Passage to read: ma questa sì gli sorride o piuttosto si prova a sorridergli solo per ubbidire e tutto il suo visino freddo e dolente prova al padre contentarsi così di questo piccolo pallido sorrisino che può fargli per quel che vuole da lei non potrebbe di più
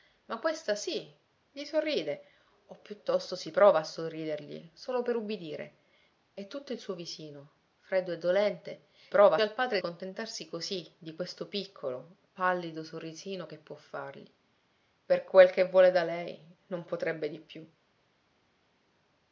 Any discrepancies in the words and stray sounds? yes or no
no